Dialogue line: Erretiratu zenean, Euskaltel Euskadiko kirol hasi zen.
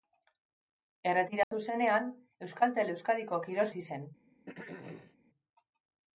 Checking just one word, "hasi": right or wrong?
right